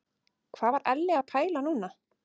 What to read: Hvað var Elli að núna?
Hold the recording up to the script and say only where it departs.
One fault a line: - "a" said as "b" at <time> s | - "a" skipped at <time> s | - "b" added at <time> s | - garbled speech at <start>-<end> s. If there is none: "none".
- "pæla" added at 1.3 s